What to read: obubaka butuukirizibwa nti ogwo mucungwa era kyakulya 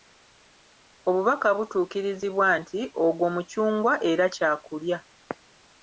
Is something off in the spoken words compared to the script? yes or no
no